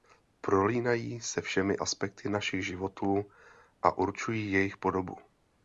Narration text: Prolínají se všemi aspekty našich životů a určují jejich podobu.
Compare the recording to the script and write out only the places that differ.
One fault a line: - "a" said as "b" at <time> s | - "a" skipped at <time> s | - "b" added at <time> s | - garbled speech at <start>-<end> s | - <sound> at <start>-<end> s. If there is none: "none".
none